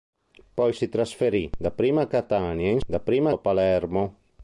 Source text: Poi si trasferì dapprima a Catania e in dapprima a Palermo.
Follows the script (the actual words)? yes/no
yes